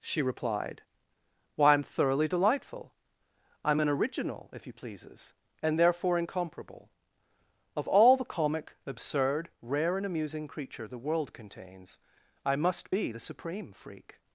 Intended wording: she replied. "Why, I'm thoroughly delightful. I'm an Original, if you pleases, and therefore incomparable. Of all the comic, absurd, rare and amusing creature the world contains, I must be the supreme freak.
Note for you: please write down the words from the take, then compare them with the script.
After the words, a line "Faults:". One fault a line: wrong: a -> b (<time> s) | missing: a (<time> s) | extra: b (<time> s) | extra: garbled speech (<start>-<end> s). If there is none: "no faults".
she replied. "Why, I'm thoroughly delightful. I'm an Original, if you pleases, and therefore incomparable. Of all the comic, absurd, rare and amusing creature the world contains, I must be the supreme freak.
Faults:
no faults